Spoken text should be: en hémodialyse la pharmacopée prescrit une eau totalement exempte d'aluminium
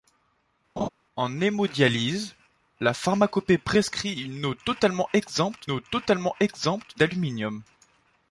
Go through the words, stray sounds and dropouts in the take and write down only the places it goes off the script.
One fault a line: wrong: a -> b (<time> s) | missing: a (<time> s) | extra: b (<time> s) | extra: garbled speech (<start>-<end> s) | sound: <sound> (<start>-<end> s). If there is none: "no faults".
sound: laugh (0.8-0.9 s)
extra: eau totalement exempte (5.7 s)